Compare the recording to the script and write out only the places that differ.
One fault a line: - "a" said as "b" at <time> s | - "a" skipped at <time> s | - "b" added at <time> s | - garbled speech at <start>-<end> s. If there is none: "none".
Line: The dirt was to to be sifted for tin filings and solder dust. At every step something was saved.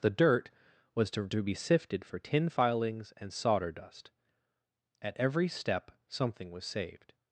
none